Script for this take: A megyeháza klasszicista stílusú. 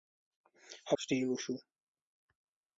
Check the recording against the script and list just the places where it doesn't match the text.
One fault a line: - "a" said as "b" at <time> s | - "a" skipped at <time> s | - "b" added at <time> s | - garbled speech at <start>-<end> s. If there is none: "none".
- "megyeháza klasszicista" skipped at 0.9 s